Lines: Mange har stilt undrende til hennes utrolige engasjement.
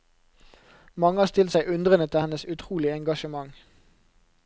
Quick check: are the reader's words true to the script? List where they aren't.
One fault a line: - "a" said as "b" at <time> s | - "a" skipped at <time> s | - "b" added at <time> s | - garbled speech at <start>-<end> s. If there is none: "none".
- "seg" added at 1.5 s